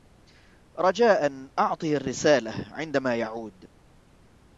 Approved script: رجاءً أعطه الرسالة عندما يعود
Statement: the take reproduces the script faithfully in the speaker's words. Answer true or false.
true